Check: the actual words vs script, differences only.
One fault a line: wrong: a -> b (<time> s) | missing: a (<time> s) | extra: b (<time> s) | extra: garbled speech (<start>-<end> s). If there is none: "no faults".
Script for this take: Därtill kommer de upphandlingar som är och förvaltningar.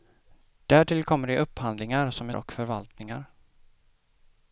no faults